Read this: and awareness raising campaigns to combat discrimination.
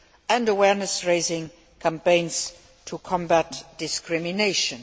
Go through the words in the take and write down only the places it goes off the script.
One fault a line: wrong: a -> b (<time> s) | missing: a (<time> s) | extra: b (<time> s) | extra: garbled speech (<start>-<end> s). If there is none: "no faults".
no faults